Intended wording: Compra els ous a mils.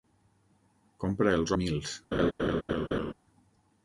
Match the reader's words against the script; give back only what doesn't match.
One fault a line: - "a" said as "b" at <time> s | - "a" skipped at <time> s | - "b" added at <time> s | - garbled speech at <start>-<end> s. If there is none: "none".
- "ous" skipped at 1.6 s